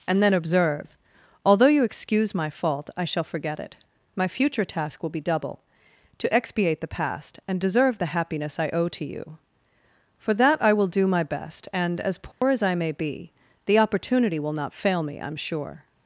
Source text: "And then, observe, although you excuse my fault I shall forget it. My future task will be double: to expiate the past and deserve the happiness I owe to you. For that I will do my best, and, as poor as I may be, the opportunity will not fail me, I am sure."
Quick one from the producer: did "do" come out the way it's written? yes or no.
yes